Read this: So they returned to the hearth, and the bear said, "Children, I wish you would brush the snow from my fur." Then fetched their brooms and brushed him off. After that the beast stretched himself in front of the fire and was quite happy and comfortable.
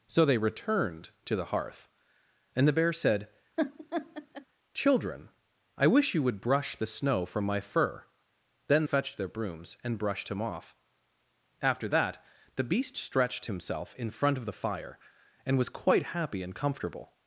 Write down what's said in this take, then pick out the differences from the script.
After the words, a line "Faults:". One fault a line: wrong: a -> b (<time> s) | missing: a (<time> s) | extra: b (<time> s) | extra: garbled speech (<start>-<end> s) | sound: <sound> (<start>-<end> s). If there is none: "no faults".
So they returned to the hearth, and the bear said, "Children, I wish you would brush the snow from my fur." Then fetched their brooms and brushed him off. After that the beast stretched himself in front of the fire and was quite happy and comfortable.
Faults:
sound: laugh (3.6-4.5 s)